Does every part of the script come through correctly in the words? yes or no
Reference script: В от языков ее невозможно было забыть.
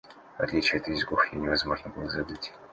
no